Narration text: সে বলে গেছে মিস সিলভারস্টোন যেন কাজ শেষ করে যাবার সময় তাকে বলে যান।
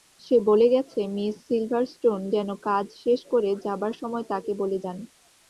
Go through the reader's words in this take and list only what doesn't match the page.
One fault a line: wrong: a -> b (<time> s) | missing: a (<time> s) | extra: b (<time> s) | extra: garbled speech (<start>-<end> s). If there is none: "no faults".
no faults